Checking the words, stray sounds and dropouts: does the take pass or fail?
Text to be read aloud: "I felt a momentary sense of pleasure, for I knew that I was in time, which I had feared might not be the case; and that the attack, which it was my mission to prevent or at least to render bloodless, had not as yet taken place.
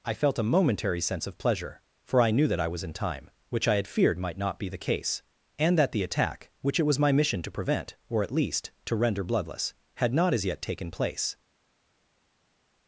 pass